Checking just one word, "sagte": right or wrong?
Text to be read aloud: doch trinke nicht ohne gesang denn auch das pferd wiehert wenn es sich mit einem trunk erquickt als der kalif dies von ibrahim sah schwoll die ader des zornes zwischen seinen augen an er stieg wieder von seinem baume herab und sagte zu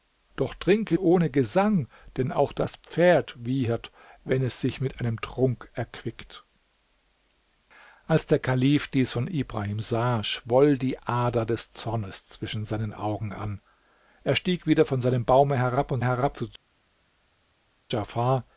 wrong